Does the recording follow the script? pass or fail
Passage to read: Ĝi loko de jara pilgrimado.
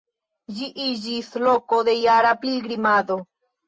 fail